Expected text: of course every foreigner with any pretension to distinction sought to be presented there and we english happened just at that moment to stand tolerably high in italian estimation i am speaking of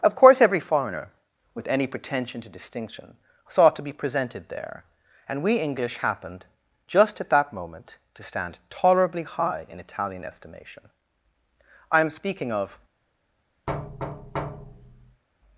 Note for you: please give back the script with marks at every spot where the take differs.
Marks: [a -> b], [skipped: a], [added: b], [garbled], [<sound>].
of course every foreigner with any pretension to distinction sought to be presented there and we english happened just at that moment to stand tolerably high in italian estimation i am speaking of [thud]